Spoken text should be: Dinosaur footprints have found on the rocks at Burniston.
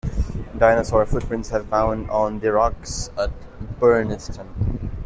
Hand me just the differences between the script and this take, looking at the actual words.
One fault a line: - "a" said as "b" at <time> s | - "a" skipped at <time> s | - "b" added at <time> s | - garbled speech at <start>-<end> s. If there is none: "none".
none